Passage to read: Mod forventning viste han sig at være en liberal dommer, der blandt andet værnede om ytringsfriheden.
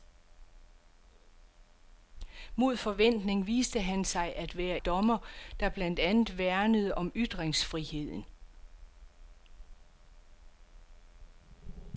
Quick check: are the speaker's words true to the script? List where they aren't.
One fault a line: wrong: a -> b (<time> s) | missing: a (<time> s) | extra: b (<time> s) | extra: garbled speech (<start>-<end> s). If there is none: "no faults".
missing: en liberal (4.8 s)